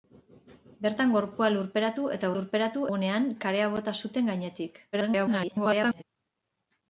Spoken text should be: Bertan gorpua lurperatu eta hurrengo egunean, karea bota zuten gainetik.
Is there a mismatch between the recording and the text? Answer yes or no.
yes